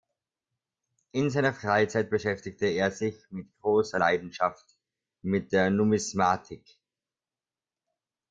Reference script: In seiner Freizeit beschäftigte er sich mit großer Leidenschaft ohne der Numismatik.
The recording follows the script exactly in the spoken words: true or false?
false